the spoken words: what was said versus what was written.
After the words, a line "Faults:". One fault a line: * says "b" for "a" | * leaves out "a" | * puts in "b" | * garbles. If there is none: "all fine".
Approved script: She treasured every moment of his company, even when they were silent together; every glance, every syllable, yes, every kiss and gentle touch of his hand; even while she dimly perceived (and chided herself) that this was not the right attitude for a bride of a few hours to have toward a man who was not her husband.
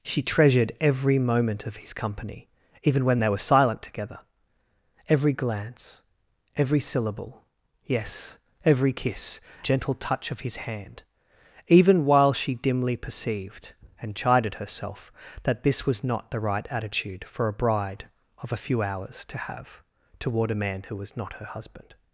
She treasured every moment of his company, even when they were silent together; every glance, every syllable, yes, every kiss gentle touch of his hand; even while she dimly perceived (and chided herself) that this was not the right attitude for a bride of a few hours to have toward a man who was not her husband.
Faults:
* leaves out "and"